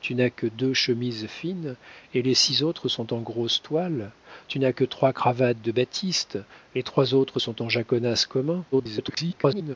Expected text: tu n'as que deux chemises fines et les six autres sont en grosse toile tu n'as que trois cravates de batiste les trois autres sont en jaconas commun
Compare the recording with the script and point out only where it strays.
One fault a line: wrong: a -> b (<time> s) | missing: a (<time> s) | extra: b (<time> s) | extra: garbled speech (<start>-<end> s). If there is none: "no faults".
extra: garbled speech (8.7-9.8 s)